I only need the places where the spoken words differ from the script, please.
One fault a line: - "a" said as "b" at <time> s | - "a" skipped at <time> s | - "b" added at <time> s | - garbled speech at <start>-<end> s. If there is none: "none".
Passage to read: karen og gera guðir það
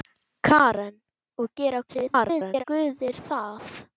- garbled speech at 1.9-2.6 s